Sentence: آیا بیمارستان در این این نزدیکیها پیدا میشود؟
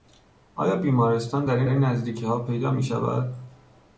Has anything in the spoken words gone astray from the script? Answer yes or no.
no